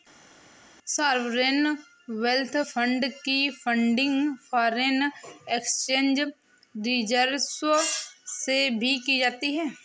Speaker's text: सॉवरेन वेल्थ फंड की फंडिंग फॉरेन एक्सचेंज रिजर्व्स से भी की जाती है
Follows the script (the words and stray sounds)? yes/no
yes